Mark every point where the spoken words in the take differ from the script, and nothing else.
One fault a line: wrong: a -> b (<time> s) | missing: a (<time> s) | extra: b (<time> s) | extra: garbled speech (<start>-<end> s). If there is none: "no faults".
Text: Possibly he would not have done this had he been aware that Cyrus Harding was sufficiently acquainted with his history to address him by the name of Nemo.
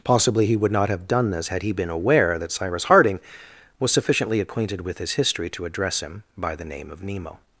no faults